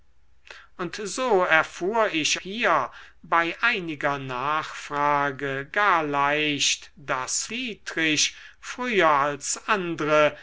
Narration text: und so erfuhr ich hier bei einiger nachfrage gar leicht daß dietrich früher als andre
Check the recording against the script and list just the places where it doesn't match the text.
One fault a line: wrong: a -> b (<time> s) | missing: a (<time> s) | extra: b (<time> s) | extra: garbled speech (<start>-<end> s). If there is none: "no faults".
no faults